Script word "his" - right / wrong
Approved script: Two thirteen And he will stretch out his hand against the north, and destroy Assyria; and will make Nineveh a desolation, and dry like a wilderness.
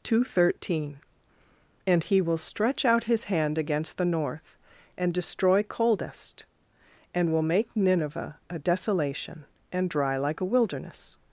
right